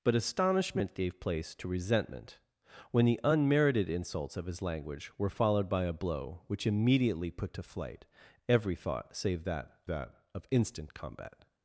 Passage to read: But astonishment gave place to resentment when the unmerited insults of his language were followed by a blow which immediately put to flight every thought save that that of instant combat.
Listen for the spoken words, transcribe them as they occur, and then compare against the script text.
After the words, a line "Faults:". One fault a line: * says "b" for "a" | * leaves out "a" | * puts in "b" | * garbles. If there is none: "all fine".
But astonishment gave place to resentment when the unmerited insults of his language were followed by a blow which immediately put to flight every thought save that that of instant combat.
Faults:
all fine